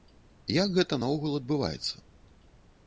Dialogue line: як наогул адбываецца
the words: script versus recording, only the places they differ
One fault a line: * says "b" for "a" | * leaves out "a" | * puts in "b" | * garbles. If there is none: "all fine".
* puts in "гэта"